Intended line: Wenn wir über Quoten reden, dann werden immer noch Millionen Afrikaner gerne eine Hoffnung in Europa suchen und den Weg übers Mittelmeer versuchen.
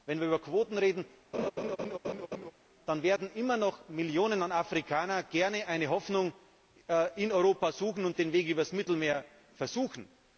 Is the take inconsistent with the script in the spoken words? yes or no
no